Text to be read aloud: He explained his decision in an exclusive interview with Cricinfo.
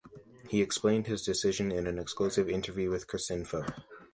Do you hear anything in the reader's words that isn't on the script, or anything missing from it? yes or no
no